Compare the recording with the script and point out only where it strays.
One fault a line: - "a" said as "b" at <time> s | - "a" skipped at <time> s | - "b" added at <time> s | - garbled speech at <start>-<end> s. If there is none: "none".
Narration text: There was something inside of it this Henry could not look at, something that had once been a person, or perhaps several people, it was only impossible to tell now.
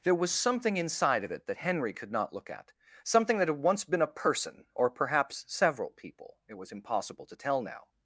- "this" said as "that" at 1.4 s
- "only" skipped at 6.7 s